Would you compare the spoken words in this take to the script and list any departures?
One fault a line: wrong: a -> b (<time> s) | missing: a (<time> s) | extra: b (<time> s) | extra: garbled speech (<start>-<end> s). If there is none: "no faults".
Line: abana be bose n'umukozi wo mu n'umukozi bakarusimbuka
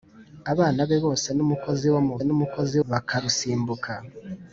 no faults